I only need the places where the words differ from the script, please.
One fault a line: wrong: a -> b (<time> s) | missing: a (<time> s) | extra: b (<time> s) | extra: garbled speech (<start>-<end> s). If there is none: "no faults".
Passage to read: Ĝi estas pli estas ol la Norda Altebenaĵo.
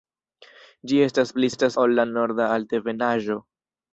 no faults